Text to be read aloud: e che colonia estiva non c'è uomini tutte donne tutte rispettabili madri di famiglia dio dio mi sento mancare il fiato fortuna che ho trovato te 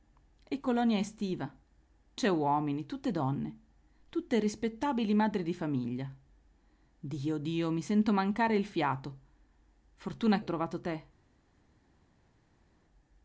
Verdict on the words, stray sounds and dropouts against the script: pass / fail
fail